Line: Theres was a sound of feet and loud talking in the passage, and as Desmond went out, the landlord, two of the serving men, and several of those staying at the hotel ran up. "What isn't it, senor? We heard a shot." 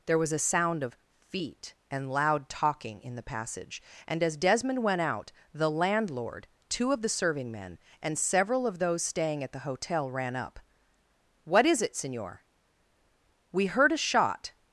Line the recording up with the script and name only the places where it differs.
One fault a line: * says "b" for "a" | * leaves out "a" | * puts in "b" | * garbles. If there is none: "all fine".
* says "There" for "Theres"
* says "is" for "isn't"